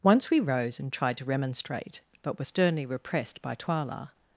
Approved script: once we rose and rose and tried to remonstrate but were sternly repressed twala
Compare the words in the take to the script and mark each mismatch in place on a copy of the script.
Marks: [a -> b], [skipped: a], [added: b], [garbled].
once we rose and [skipped: rose and] tried to remonstrate but were sternly repressed [added: by] twala